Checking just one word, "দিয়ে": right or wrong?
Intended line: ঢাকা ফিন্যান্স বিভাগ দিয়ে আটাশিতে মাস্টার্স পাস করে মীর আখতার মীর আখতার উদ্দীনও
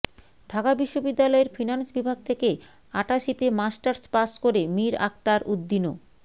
wrong